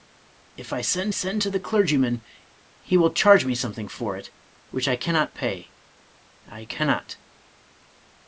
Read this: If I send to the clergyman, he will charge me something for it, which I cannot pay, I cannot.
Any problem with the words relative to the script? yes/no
yes